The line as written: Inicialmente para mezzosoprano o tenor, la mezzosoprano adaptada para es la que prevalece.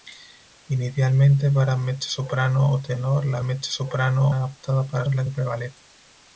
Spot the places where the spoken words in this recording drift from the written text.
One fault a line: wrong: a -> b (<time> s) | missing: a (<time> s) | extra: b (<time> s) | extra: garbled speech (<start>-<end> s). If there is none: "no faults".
no faults